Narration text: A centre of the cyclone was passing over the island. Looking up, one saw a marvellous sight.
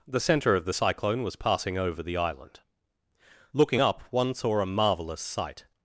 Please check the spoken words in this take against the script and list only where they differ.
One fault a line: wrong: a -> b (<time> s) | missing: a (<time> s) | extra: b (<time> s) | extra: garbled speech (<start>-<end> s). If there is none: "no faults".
wrong: A -> The (0.1 s)